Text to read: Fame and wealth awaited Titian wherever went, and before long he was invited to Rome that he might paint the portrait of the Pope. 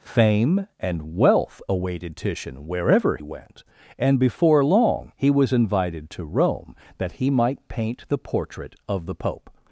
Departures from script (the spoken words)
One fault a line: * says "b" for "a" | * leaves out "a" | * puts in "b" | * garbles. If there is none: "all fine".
all fine